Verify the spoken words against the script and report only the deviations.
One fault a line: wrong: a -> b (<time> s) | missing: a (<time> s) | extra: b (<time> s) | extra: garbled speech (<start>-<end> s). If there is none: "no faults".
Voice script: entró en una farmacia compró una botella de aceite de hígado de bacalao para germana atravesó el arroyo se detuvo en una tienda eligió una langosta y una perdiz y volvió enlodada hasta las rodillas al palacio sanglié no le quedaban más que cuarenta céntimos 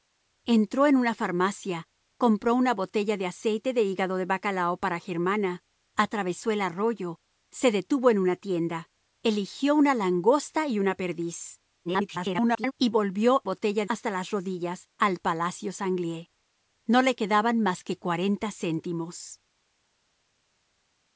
extra: garbled speech (11.8-12.7 s)
wrong: enlodada -> botella (13.4 s)